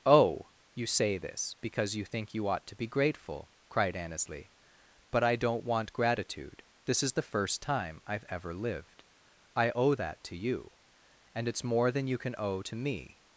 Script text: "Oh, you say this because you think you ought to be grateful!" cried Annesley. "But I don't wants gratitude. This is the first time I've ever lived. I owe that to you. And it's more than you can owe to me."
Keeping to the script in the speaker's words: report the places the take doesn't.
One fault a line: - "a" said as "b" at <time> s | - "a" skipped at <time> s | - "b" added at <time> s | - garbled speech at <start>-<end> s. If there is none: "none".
- "wants" said as "want" at 5.6 s